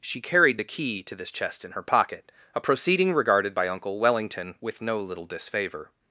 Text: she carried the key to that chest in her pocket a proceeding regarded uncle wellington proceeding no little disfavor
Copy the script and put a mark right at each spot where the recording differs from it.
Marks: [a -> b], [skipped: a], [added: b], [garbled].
she carried the key to [that -> this] chest in her pocket a proceeding regarded [added: by] uncle wellington [proceeding -> with] no little disfavor